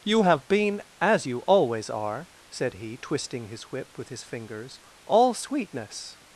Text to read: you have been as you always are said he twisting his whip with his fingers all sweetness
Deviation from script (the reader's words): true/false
false